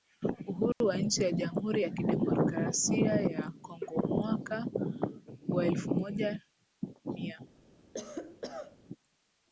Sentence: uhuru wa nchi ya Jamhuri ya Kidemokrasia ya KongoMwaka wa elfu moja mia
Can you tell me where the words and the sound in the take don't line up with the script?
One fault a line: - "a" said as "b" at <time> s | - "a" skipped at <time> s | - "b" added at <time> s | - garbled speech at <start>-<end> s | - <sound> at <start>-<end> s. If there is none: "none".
- dropout at 0.7-0.8 s
- cough at 7.9-8.8 s